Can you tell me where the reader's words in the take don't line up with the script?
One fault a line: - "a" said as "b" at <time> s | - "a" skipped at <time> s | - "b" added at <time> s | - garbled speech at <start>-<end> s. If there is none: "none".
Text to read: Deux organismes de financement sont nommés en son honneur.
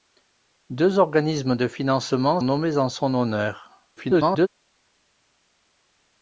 - "sont" skipped at 2.4 s
- garbled speech at 4.0-4.5 s